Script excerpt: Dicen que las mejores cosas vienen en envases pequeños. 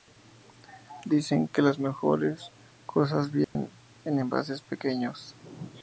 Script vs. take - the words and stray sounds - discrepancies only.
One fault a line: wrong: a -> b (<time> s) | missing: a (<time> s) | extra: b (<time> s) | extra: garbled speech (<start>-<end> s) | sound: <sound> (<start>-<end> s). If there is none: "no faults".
sound: dropout (3.4-3.6 s)